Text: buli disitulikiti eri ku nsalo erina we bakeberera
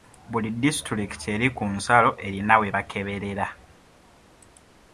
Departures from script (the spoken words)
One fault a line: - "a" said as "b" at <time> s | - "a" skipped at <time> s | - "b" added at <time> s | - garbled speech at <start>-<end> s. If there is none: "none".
none